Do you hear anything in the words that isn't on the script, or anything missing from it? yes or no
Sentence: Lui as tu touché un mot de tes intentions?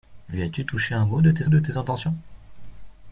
yes